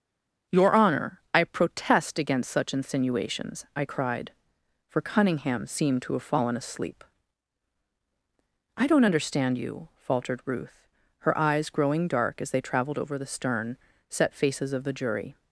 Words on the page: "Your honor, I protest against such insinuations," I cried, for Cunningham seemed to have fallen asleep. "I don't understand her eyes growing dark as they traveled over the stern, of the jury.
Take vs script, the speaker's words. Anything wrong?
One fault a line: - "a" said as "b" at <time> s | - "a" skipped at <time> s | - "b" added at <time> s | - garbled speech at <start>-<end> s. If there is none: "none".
- "you faltered Ruth" added at 9.6 s
- "set faces" added at 14.1 s